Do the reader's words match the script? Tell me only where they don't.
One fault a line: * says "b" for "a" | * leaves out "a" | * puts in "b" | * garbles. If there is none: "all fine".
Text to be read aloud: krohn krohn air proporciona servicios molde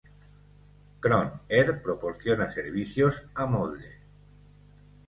* leaves out "krohn"
* puts in "a"